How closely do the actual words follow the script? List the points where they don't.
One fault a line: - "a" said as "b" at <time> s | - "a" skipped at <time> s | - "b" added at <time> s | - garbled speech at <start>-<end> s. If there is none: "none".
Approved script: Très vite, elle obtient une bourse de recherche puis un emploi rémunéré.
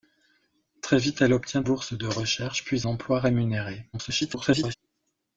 - "une" skipped at 1.6 s
- "un" skipped at 2.9 s
- garbled speech at 3.9-4.7 s